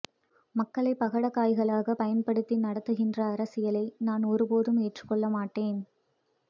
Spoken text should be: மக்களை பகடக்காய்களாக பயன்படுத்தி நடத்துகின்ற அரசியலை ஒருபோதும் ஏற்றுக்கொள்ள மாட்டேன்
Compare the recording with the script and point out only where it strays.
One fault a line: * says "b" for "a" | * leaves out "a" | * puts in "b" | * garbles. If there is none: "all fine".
* puts in "நான்"